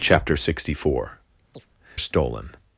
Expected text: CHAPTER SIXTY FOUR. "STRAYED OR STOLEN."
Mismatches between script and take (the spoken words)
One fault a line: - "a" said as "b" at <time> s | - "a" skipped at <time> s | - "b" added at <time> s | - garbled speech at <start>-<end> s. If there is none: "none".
- "STRAYED OR" skipped at 1.2 s